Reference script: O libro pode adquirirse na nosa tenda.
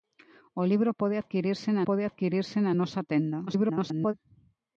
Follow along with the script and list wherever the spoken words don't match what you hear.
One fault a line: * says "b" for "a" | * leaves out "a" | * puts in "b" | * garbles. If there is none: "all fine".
* puts in "pode adquirirse na"
* garbles